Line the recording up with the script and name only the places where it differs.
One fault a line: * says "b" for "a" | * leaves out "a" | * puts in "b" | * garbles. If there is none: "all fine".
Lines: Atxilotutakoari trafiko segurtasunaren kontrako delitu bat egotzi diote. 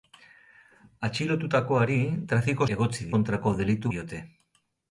* says "egotzi" for "segurtasunaren"
* leaves out "bat egotzi"